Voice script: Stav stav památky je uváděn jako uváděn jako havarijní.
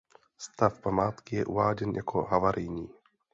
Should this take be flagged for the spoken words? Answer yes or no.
yes